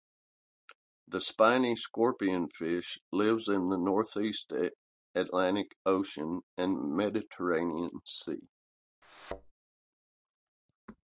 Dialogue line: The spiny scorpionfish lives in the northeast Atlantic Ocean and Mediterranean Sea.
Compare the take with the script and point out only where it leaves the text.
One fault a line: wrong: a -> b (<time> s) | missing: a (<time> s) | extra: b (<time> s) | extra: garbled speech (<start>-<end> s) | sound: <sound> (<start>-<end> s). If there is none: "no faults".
sound: thud (9.0-9.5 s)